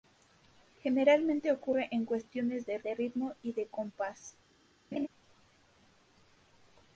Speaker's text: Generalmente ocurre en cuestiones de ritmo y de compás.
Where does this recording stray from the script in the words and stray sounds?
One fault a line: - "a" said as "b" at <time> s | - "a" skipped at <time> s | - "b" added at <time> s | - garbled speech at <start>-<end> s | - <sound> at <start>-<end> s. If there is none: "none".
- "de" added at 2.8 s
- laugh at 4.9-5.1 s